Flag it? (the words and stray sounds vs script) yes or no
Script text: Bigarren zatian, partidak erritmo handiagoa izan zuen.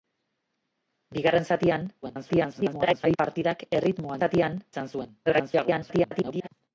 yes